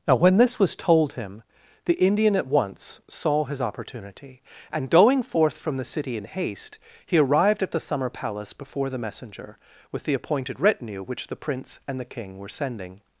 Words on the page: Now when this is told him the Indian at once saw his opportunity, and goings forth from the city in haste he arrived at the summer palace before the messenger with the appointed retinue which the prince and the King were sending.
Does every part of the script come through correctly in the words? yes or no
no